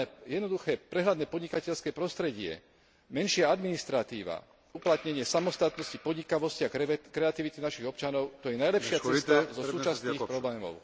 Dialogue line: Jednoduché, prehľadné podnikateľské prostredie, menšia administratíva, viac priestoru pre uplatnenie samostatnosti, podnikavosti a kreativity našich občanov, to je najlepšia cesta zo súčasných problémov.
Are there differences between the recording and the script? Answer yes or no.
yes